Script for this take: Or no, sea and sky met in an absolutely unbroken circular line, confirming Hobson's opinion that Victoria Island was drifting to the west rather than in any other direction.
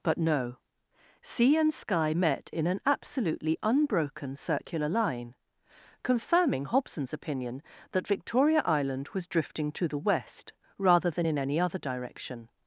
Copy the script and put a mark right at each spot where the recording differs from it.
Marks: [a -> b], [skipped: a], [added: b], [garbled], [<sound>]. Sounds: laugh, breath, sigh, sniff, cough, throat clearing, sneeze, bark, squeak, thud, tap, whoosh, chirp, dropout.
[Or -> But] no, sea and sky met in an absolutely unbroken circular line, confirming Hobson's opinion that Victoria Island was drifting to the west rather than in any other direction.